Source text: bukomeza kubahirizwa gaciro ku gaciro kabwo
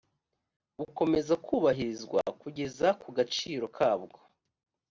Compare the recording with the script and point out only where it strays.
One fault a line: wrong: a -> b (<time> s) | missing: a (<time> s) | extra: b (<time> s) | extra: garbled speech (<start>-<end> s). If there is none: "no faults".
wrong: gaciro -> kugeza (2.4 s)